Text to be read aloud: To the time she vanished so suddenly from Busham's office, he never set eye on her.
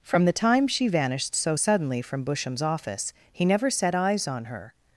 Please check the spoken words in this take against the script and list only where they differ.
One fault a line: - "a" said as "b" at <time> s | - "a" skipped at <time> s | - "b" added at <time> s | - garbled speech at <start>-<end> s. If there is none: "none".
- "To" said as "From" at 0.0 s
- "eye" said as "eyes" at 3.9 s